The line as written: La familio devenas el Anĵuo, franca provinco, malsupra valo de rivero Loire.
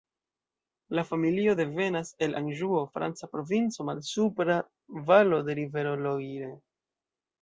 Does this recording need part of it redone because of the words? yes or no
no